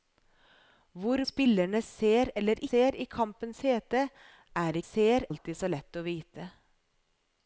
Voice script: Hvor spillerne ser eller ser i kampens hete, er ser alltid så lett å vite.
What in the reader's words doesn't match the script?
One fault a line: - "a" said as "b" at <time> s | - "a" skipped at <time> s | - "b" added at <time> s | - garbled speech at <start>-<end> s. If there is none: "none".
none